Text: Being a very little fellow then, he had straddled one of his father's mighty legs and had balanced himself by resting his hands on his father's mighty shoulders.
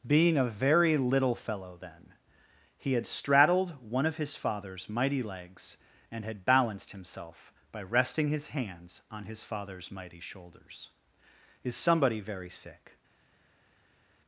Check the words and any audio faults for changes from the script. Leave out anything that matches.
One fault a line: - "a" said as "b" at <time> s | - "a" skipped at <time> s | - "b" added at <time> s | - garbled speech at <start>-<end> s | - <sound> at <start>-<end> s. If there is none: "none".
- "Is somebody very sick" added at 11.6 s